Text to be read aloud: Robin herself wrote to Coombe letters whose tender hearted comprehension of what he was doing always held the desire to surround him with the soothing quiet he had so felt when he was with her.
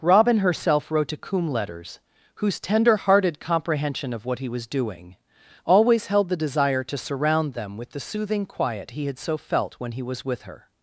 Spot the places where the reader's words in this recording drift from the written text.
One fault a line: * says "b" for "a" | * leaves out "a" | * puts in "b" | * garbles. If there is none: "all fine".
* says "them" for "him"